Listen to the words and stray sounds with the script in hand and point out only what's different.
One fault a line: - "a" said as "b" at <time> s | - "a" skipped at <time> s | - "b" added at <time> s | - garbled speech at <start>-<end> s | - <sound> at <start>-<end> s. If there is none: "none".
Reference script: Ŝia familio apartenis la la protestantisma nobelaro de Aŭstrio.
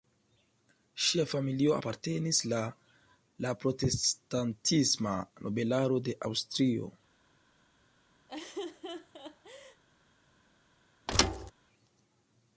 - laugh at 8.3-9.8 s
- thud at 11.1-11.5 s